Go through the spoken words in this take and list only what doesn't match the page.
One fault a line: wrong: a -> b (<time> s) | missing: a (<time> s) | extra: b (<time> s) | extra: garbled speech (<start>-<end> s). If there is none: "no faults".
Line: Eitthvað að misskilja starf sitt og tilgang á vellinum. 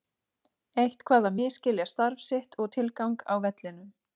no faults